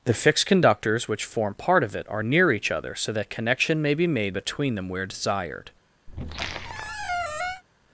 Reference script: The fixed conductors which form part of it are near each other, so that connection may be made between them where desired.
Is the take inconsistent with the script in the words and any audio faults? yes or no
yes